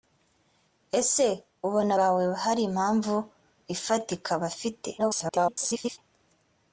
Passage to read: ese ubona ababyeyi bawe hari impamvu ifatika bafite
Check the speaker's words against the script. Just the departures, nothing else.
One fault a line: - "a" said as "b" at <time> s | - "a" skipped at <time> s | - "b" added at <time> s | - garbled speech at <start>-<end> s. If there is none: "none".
- "ababyeyi" skipped at 1.9 s
- garbled speech at 5.0-6.0 s